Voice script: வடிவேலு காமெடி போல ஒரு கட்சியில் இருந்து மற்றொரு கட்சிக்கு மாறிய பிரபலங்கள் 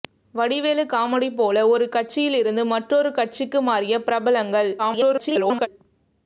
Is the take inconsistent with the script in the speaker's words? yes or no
yes